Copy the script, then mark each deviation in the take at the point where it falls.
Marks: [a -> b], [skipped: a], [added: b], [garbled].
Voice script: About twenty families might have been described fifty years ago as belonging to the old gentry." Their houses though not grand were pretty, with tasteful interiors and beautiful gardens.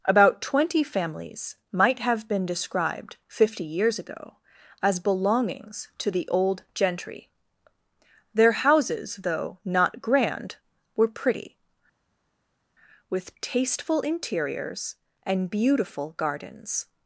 About twenty families might have been described fifty years ago as [belonging -> belongings] to the old gentry." Their houses though not grand were pretty, with tasteful interiors and beautiful gardens.